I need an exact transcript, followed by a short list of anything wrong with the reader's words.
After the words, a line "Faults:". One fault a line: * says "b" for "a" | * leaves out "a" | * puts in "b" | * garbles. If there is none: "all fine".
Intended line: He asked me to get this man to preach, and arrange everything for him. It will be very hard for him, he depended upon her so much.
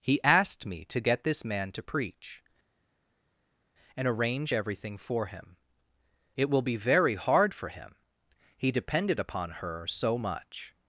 He asked me to get this man to preach, and arrange everything for him. It will be very hard for him, he depended upon her so much.
Faults:
all fine